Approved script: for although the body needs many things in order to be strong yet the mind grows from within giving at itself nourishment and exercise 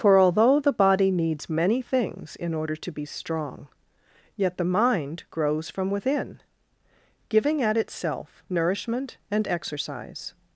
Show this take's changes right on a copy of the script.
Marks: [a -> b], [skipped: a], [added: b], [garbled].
for although the body needs many things in order to be strong yet the mind grows from within giving at itself nourishment and exercise